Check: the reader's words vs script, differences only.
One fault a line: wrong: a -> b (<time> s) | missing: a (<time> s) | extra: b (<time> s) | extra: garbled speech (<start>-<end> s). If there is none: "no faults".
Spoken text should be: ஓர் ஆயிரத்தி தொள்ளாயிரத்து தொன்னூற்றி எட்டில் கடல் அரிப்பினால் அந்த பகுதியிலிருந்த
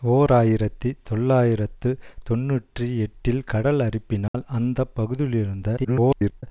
extra: garbled speech (5.8-6.4 s)